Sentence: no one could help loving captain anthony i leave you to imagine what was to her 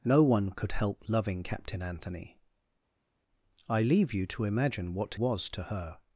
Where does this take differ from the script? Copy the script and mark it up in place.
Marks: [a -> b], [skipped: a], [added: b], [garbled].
no one could help loving captain anthony i leave you to imagine what was to her